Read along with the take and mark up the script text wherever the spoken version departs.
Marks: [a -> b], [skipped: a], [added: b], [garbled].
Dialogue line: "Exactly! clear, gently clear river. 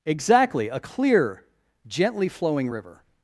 "Exactly! [added: a] clear, gently [clear -> flowing] river.